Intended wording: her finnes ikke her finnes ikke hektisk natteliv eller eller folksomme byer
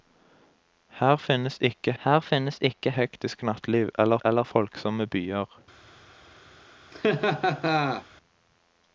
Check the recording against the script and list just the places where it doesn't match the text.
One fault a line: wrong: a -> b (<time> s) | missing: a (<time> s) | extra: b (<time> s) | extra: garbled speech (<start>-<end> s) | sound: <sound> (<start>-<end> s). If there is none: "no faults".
sound: laugh (6.9-8.1 s)